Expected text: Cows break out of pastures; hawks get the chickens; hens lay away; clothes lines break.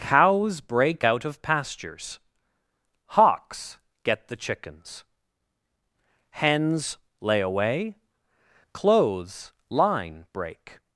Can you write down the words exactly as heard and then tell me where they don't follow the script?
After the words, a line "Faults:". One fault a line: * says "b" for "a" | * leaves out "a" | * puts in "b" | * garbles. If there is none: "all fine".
Cows break out of pastures; hawks get the chickens; hens lay away; clothes line break.
Faults:
* says "line" for "lines"